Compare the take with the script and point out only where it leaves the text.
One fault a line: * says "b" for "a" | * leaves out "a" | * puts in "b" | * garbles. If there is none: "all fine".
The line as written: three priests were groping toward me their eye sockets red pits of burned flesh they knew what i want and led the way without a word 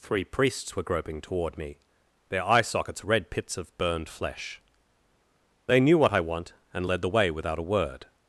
all fine